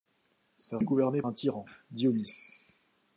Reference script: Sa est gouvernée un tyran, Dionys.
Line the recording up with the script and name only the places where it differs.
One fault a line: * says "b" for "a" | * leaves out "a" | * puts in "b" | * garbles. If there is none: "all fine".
all fine